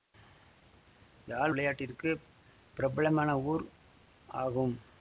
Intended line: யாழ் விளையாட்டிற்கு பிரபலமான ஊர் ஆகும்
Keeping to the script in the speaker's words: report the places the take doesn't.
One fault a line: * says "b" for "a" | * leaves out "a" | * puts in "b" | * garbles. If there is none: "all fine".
all fine